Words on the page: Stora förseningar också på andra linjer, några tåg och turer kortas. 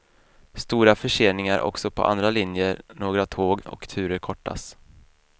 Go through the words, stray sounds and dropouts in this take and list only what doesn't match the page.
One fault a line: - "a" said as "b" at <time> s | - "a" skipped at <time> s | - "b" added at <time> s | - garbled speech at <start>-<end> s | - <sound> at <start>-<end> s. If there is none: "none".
none